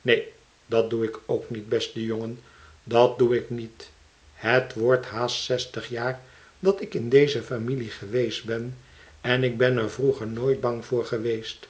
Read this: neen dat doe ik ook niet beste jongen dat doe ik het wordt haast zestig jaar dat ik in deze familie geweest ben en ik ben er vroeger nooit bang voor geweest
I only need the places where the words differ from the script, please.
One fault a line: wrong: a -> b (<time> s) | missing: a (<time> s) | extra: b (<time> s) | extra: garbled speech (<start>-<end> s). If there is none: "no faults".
extra: niet (3.5 s)